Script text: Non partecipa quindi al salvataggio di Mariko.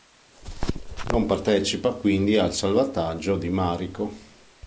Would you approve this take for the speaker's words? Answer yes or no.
yes